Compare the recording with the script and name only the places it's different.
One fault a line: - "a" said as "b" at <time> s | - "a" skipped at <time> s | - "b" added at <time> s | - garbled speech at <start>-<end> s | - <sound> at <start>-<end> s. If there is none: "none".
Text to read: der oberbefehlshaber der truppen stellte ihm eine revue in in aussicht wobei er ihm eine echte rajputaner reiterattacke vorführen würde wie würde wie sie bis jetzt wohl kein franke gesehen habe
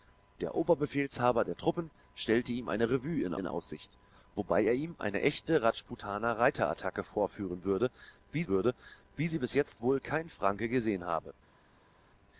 none